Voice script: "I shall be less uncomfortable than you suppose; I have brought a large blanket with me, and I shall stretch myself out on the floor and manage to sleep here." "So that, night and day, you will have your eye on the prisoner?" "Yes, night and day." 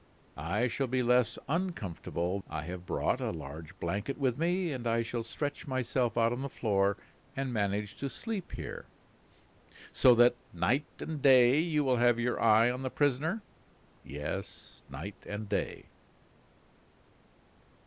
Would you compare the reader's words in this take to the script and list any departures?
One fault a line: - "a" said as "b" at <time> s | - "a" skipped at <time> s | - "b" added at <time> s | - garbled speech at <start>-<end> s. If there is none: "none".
- "than you suppose" skipped at 2.4 s